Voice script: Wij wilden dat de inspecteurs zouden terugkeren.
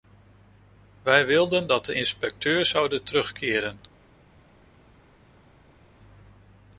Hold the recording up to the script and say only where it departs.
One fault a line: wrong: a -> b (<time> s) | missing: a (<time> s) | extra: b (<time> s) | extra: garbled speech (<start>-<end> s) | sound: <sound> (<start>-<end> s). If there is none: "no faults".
no faults